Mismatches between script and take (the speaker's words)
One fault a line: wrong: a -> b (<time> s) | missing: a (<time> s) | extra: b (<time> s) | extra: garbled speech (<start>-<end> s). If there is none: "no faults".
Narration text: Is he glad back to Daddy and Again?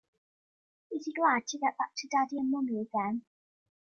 extra: to get (1.5 s)
extra: Mummy (2.5 s)